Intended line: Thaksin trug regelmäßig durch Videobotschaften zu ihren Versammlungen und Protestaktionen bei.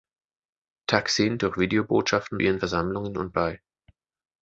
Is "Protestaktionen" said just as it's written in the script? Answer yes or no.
no